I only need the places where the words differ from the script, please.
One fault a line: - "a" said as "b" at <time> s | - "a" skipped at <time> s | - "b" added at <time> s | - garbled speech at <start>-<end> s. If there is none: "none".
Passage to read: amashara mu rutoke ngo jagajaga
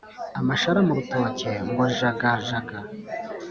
none